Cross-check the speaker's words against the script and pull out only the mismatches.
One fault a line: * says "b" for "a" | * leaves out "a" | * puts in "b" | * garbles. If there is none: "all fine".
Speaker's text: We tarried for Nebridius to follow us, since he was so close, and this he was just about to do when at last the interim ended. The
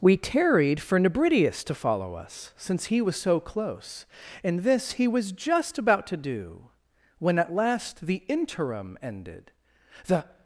all fine